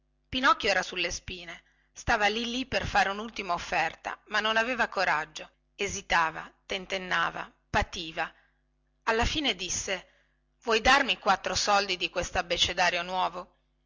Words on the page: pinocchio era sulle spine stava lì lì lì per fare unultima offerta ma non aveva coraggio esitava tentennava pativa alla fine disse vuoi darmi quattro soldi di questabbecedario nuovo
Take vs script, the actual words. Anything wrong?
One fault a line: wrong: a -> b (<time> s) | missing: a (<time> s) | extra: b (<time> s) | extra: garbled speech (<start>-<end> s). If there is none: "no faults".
missing: lì (2.6 s)